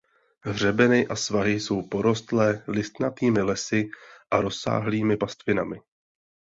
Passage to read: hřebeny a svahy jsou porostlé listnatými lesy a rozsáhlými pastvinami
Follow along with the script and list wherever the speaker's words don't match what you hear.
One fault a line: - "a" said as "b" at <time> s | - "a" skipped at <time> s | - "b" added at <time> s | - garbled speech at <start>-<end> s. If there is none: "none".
none